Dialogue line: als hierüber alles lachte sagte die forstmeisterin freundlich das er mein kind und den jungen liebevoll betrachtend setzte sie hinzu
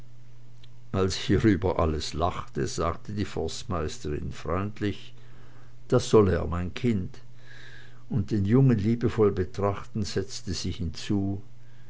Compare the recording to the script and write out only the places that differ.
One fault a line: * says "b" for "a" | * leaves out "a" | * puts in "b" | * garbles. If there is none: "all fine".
* puts in "soll"